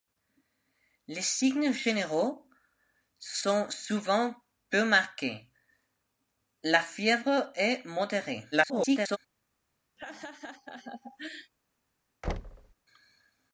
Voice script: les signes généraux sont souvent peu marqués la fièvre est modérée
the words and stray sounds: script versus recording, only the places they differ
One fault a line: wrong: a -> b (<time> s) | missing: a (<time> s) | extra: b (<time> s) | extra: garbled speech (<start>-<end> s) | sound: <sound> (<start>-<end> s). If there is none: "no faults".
extra: garbled speech (8.5-9.2 s)
sound: laugh (10.0-11.5 s)
sound: thud (12.2-12.7 s)